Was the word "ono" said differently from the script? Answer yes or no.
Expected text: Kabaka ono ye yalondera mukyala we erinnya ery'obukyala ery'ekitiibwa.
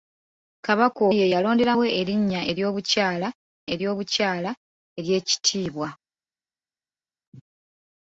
yes